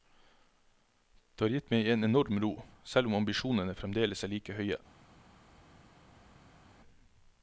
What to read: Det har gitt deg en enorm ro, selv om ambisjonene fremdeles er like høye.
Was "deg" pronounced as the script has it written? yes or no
no